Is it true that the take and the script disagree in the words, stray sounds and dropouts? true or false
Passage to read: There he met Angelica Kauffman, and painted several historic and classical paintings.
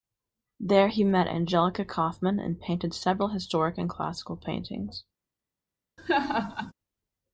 true